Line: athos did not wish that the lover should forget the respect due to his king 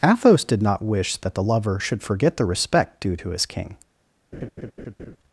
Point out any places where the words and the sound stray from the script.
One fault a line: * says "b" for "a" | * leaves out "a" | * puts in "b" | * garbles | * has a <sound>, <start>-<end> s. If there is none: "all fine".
* has a laugh, 4.3-5.2 s